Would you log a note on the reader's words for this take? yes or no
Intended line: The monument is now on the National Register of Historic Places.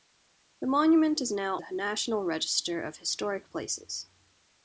yes